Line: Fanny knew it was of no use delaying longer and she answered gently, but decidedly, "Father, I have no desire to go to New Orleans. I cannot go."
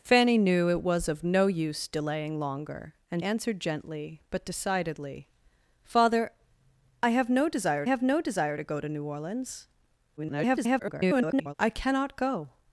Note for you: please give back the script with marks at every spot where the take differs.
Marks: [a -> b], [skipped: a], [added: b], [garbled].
Fanny knew it was of no use delaying longer and [skipped: she] answered gently, but decidedly, "Father, I have no desire [added: have no desire] to go to New Orleans. [garbled] I cannot go."